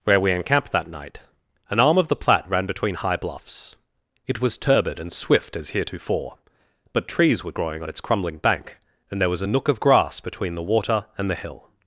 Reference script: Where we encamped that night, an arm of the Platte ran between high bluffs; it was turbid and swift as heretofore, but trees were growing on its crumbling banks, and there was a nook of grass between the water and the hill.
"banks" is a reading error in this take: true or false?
true